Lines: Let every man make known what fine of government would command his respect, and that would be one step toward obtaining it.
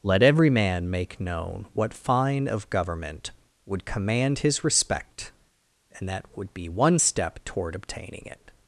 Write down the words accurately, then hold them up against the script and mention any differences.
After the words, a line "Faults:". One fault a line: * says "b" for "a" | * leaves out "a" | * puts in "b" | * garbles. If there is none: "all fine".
Let every man make known what fine of government would command his respect, and that would be one step toward obtaining it.
Faults:
all fine